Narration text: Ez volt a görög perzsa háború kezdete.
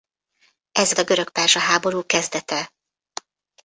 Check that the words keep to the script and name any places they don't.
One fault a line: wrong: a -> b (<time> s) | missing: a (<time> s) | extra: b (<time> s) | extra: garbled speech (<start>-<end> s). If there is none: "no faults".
missing: volt (1.0 s)